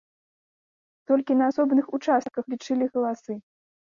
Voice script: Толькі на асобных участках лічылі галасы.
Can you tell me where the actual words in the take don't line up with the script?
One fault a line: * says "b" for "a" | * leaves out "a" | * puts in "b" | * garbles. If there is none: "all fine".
all fine